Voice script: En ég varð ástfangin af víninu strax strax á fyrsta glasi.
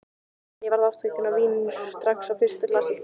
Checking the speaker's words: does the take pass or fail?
fail